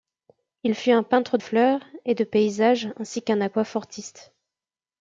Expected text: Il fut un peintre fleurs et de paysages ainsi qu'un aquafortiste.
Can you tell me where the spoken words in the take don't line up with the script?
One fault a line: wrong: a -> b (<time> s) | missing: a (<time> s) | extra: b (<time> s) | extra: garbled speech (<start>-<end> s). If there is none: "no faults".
no faults